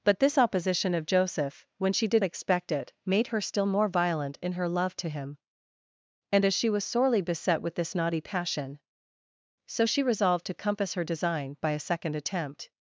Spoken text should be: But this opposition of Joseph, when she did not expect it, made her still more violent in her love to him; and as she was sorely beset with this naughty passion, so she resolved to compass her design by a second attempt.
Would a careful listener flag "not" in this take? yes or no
yes